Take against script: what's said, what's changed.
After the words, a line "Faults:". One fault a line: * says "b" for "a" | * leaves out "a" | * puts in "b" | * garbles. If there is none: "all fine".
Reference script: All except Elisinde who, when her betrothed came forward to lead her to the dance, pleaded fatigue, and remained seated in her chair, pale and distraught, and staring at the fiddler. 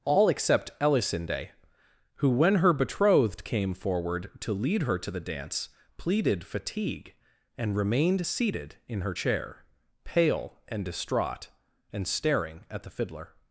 All except Elisinde who, when her betrothed came forward to lead her to the dance, pleaded fatigue, and remained seated in her chair, pale and distraught, and staring at the fiddler.
Faults:
all fine